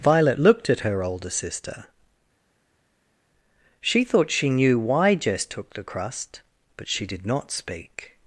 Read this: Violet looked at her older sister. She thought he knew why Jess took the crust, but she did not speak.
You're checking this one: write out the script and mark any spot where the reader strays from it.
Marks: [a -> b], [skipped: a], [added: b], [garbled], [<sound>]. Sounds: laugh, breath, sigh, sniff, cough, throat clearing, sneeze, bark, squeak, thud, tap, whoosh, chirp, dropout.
Violet looked at her older sister. She thought [he -> she] knew why Jess took the crust, but she did not speak.